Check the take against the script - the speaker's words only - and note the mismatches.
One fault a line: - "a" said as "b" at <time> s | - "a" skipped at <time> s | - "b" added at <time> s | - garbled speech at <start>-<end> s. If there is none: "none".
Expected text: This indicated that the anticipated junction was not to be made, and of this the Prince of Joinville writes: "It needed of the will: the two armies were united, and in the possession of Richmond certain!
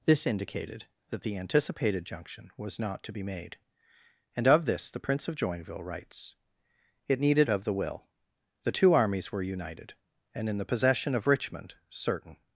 none